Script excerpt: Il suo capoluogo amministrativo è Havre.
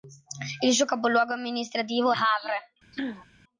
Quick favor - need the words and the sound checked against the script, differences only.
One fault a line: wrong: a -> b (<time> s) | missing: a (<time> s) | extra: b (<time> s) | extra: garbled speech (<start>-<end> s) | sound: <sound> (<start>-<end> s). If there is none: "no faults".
missing: è (2.1 s)
sound: throat clearing (2.9-3.3 s)